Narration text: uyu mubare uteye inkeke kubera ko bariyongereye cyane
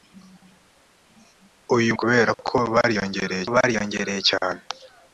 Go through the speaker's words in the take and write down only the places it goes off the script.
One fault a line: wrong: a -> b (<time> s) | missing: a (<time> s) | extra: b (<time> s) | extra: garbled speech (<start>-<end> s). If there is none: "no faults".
missing: mubare uteye inkeke (1.9 s)
extra: bariyongereye (3.5 s)